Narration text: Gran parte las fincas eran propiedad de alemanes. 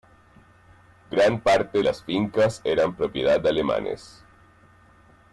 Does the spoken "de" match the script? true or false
true